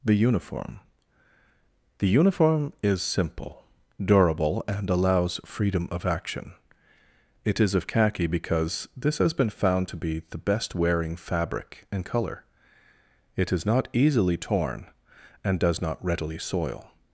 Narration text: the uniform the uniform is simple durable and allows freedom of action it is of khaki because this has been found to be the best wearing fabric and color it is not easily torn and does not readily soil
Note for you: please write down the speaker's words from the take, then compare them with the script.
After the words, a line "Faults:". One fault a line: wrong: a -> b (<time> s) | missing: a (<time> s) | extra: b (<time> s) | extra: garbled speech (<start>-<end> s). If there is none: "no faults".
the uniform the uniform is simple durable and allows freedom of action it is of khaki because this has been found to be the best wearing fabric and color it is not easily torn and does not readily soil
Faults:
no faults